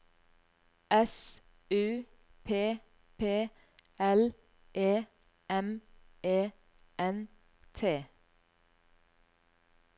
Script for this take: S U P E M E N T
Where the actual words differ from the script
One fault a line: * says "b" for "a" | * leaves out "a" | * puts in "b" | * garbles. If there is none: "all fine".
* puts in "P L"